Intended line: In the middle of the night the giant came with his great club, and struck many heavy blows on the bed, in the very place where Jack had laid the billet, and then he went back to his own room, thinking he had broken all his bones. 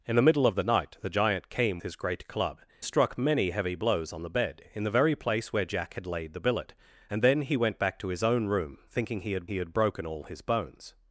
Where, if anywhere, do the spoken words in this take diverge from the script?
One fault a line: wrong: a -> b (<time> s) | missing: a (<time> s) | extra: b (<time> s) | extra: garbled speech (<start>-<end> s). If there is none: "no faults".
missing: with (1.8 s)
missing: and (2.6 s)
extra: he had (9.4 s)